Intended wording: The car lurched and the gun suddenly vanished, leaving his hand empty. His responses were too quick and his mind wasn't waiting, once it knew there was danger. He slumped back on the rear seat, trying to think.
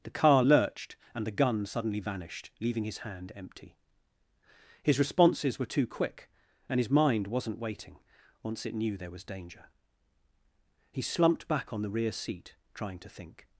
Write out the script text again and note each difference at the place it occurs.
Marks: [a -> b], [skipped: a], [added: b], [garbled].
The car lurched and the gun suddenly vanished, leaving his hand empty. His responses were too quick and his mind wasn't waiting, once it knew there was danger. He slumped back on the rear seat, trying to think.